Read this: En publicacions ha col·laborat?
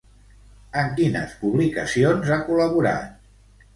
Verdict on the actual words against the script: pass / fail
fail